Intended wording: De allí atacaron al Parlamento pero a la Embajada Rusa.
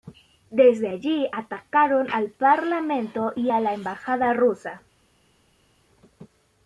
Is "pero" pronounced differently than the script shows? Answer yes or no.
yes